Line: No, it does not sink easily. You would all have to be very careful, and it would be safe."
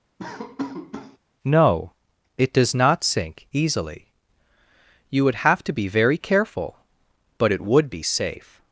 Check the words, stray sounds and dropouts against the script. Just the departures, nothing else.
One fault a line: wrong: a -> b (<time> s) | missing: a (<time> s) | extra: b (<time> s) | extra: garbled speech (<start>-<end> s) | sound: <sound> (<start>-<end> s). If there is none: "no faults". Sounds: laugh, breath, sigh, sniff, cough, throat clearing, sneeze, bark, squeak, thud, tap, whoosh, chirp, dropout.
sound: laugh (0.2-1.2 s)
missing: all (5.4 s)
wrong: and -> but (7.4 s)